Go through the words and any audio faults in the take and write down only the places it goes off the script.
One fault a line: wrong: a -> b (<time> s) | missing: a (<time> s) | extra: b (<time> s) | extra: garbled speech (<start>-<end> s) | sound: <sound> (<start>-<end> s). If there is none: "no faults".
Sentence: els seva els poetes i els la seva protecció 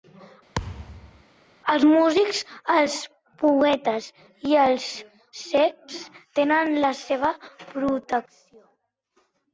sound: thud (0.5-1.2 s)
wrong: seva -> músics (1.9 s)
extra: cecs tenen (5.4 s)